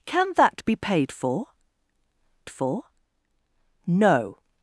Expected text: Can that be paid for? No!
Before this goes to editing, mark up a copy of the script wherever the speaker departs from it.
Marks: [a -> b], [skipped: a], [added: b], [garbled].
Can that be paid for? [added: for] No!